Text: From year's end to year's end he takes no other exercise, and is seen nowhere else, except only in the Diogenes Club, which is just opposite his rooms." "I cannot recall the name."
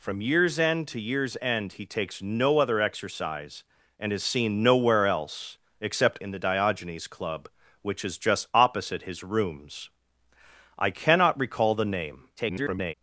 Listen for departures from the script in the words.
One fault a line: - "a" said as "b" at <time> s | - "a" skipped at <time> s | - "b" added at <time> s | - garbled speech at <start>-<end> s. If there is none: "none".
- "only" skipped at 6.2 s
- garbled speech at 12.4-12.9 s